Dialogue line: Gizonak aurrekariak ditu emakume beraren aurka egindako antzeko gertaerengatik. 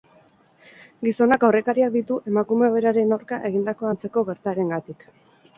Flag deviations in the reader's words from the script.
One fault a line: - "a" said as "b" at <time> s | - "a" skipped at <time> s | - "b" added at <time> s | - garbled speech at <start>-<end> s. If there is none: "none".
none